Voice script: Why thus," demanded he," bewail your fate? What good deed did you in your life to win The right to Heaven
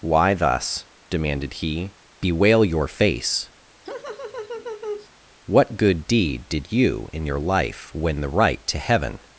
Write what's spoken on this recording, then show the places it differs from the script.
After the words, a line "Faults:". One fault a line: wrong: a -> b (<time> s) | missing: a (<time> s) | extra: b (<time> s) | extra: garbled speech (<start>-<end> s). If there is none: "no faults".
Why thus," demanded he," bewail your face? What good deed did you in your life win The right to Heaven
Faults:
wrong: fate -> face (2.9 s)
missing: to (7.9 s)